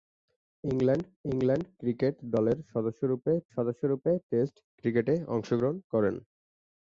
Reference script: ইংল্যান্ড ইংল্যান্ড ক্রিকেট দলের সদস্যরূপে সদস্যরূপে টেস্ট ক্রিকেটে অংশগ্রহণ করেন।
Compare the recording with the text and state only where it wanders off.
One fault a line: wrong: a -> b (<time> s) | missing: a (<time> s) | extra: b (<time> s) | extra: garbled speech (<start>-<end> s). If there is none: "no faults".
no faults